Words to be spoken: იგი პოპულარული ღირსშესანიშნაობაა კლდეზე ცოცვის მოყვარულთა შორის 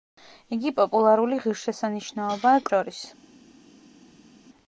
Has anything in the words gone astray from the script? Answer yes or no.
yes